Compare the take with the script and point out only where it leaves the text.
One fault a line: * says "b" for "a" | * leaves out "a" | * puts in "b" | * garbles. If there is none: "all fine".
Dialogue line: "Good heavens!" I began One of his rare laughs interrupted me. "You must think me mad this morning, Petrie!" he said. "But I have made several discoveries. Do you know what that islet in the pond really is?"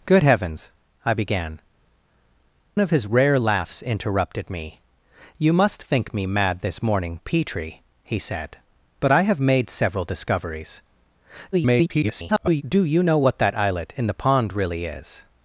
* leaves out "One"
* garbles